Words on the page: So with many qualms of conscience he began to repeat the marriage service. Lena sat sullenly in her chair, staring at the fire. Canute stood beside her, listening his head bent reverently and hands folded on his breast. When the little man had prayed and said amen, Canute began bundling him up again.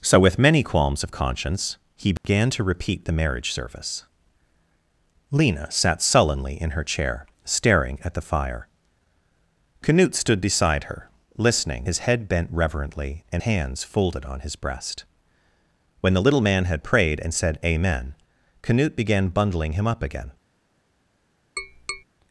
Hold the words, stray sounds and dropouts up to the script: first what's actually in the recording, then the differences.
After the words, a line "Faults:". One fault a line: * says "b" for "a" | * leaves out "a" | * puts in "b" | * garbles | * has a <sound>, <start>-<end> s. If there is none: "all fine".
So with many qualms of conscience he began to repeat the marriage service. Lena sat sullenly in her chair, staring at the fire. Canute stood beside her, listening his head bent reverently and hands folded on his breast. When the little man had prayed and said amen, Canute began bundling him up again.
Faults:
* has a dropout, 2.2-2.2 s
* has a tap, 21.6-22.0 s